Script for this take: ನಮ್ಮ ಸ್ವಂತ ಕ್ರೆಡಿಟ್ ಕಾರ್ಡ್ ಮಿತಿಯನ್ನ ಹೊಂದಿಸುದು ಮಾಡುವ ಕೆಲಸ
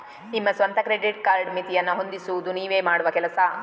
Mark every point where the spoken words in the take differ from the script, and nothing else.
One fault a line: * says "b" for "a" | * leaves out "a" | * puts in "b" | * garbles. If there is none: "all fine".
* says "ನಿಮ್ಮ" for "ನಮ್ಮ"
* puts in "ನೀವೇ"